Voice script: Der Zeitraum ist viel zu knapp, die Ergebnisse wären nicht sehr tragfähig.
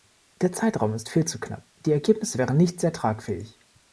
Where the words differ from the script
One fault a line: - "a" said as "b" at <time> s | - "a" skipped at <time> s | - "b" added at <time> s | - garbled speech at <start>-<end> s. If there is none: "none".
none